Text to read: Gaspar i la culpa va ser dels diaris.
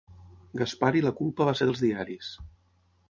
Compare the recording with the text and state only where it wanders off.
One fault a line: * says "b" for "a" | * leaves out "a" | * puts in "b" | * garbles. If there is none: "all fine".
all fine